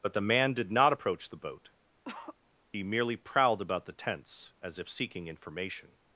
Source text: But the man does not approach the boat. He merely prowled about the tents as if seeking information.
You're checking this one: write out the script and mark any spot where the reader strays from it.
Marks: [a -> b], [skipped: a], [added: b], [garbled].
But the man [does -> did] not approach the boat. He merely prowled about the tents as if seeking information.